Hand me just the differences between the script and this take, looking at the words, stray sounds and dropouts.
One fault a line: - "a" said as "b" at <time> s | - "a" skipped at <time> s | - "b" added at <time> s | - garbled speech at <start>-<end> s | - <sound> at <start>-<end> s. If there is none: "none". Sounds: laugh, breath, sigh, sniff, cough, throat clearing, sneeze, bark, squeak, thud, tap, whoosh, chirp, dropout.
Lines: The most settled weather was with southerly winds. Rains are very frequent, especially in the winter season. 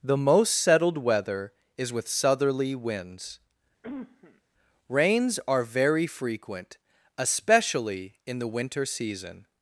- "was" said as "is" at 1.8 s
- cough at 3.8-4.4 s